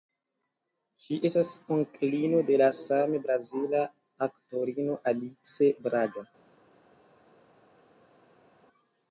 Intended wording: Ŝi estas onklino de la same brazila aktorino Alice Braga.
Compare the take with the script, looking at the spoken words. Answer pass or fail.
pass